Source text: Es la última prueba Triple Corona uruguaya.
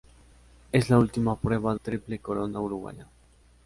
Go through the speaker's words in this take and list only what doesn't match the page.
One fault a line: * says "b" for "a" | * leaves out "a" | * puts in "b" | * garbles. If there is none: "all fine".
all fine